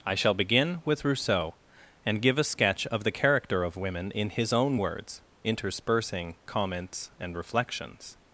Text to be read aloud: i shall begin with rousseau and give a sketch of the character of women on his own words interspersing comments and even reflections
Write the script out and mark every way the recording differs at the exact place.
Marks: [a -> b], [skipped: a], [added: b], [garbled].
i shall begin with rousseau and give a sketch of the character of women [on -> in] his own words interspersing comments and [skipped: even] reflections